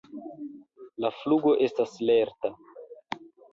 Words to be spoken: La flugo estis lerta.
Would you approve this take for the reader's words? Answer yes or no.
no